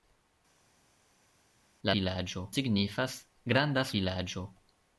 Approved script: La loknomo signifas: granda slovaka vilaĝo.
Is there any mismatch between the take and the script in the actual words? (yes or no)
yes